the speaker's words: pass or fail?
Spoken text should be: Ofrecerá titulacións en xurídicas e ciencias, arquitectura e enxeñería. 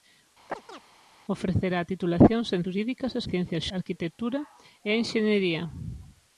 pass